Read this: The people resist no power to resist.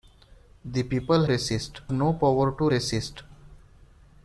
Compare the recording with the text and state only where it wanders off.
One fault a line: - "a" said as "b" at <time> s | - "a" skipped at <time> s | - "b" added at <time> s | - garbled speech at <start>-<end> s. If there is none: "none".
none